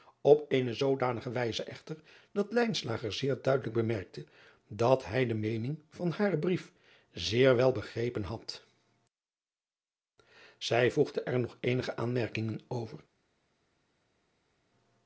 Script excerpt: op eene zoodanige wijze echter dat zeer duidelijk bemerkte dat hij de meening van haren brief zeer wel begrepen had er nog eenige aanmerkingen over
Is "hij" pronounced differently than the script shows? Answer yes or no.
no